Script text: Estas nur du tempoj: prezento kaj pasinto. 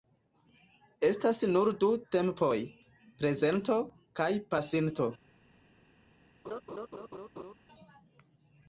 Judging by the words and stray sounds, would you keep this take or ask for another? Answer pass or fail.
fail